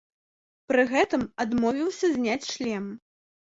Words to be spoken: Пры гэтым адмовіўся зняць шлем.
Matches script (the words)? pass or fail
pass